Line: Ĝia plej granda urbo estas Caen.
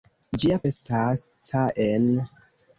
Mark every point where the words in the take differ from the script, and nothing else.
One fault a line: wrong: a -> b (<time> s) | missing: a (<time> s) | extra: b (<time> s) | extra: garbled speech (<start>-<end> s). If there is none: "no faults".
missing: plej granda urbo (0.6 s)